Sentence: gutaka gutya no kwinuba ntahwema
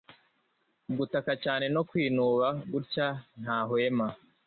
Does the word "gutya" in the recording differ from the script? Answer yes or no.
yes